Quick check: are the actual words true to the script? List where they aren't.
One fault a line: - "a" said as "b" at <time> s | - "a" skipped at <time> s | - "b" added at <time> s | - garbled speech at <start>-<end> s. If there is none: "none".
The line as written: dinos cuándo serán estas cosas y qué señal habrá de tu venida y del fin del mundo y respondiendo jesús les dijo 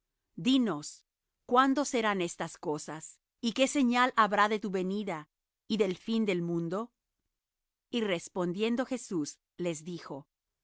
none